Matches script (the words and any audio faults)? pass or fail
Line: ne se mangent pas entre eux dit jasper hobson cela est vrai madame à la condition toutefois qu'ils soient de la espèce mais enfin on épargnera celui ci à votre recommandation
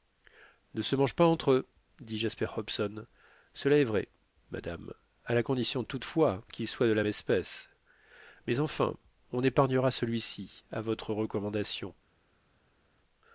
pass